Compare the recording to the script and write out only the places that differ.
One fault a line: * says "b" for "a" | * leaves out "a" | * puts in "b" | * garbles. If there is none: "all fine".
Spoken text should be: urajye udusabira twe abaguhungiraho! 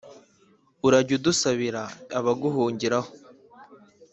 * leaves out "twe"